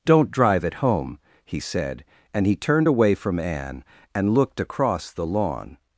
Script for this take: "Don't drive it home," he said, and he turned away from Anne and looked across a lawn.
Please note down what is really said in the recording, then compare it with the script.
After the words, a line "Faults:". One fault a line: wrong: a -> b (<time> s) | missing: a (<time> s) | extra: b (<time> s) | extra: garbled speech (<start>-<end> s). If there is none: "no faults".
"Don't drive it home," he said, and he turned away from Anne and looked across the lawn.
Faults:
wrong: a -> the (5.1 s)